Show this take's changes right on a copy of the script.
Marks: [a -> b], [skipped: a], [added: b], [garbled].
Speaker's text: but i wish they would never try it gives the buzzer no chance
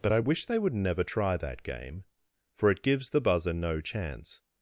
but i wish they would never try [added: that game for] it gives the buzzer no chance